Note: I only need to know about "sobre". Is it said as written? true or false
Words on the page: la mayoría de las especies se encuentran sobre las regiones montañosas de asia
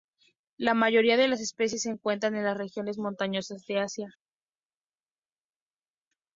false